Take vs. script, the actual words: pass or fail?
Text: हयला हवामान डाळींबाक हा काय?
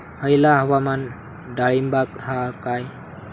pass